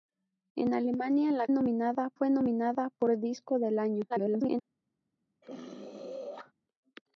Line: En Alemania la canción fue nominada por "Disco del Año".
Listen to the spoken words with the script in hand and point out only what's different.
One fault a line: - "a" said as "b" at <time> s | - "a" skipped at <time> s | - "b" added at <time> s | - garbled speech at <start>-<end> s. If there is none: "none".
- "canción" said as "nominada" at 1.5 s
- garbled speech at 4.1-4.6 s